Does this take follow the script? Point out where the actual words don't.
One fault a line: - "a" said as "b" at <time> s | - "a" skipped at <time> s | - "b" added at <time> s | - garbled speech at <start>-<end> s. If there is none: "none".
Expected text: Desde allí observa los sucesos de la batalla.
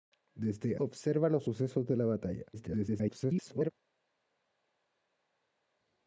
- "allí" skipped at 0.8 s
- garbled speech at 2.5-3.7 s